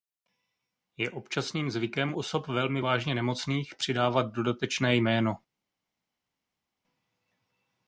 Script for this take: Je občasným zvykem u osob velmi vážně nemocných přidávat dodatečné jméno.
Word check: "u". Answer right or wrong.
wrong